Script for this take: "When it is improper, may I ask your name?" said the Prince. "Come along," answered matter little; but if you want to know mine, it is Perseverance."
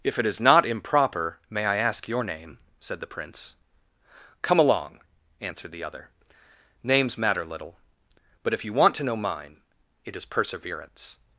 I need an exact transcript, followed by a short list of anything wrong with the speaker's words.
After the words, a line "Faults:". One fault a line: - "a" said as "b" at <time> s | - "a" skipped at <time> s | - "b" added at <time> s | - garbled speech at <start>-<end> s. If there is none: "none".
"If it is not improper, may I ask your name?" said the Prince. "Come along," answered the other, "Names matter little; but if you want to know mine, it is Perseverance."
Faults:
- "When" said as "If" at 0.0 s
- "not" added at 0.4 s
- "the other Names" added at 5.7 s